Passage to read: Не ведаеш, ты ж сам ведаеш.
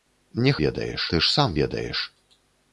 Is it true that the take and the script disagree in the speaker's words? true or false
false